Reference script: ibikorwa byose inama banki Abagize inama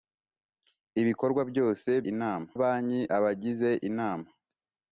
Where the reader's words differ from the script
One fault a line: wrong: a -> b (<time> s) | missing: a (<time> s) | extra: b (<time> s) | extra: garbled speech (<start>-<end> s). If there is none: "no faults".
no faults